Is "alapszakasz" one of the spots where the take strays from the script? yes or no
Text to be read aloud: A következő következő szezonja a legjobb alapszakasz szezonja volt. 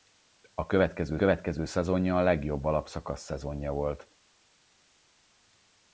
no